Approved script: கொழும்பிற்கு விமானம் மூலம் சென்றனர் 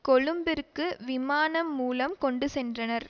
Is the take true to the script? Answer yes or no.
no